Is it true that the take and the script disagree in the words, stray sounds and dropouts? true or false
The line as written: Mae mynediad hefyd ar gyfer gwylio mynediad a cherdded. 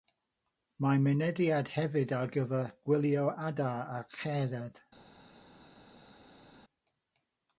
true